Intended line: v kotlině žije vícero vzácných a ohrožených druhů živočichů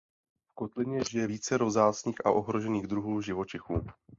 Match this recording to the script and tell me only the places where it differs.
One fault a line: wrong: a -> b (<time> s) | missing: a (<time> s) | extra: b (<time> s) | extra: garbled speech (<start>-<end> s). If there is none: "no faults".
no faults